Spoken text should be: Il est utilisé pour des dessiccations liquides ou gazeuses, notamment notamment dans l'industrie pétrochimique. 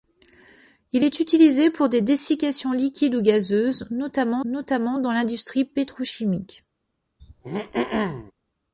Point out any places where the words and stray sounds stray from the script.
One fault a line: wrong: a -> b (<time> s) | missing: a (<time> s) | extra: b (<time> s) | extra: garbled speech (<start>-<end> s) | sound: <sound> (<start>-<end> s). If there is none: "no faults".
sound: throat clearing (7.2-8.3 s)